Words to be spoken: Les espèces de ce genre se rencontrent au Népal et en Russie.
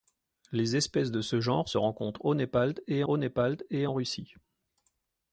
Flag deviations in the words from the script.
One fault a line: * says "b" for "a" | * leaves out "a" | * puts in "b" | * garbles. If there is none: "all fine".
* puts in "au Népal et"